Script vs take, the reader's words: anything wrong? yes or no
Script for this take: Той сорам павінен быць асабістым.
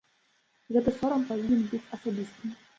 yes